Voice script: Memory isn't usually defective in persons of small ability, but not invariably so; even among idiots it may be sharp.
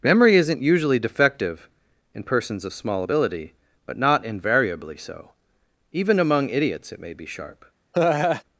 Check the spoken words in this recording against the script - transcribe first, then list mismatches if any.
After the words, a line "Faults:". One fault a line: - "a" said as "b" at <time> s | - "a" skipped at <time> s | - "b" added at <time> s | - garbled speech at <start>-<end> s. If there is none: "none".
Memory isn't usually defective in persons of small ability, but not invariably so; even among idiots it may be sharp.
Faults:
none